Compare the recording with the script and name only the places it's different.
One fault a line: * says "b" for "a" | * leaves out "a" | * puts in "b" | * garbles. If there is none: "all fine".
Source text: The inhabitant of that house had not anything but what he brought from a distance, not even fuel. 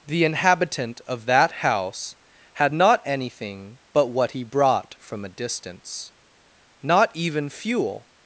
all fine